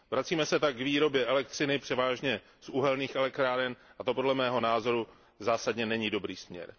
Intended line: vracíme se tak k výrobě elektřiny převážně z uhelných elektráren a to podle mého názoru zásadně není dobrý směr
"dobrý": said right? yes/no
yes